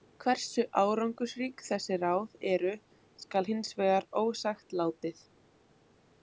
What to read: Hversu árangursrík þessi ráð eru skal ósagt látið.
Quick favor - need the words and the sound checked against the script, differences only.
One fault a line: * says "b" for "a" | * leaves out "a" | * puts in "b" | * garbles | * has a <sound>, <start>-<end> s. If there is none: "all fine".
* puts in "hins vegar"